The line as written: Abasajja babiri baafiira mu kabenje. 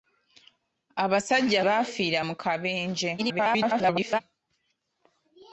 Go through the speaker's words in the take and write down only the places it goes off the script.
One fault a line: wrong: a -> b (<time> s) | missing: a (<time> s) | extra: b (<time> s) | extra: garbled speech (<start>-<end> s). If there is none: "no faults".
missing: babiri (1.6 s)
extra: garbled speech (3.2-4.2 s)